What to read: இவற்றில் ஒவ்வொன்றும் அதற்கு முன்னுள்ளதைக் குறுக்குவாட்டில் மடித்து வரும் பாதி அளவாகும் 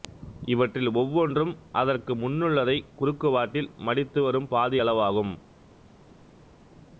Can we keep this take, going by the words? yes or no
yes